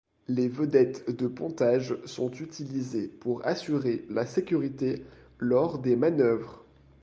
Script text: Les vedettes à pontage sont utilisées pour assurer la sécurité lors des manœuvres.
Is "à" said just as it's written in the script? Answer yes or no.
no